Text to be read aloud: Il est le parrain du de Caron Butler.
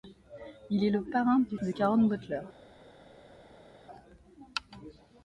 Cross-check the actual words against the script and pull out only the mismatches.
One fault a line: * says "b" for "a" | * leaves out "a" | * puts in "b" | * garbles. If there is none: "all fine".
all fine